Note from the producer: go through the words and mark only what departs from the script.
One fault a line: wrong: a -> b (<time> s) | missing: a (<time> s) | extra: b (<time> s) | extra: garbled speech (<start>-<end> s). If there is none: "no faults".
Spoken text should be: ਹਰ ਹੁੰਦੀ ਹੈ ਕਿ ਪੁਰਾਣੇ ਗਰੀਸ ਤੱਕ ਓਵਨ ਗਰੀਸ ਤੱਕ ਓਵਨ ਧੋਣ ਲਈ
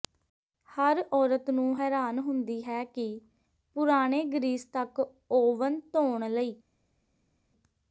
extra: ਔਰਤ ਨੂੰ ਹੈਰਾਨ (1.1 s)
missing: ਗਰੀਸ ਤੱਕ ਓਵਨ (5.8 s)